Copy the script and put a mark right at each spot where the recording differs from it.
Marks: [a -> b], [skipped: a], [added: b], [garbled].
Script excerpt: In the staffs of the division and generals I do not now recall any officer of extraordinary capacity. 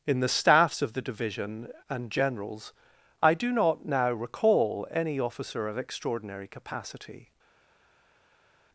In the staffs of the division and generals I do not now recall any officer of extraordinary capacity.